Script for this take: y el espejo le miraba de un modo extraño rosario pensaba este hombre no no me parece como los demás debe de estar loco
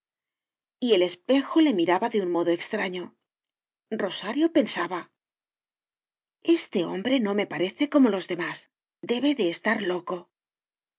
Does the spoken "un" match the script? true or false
true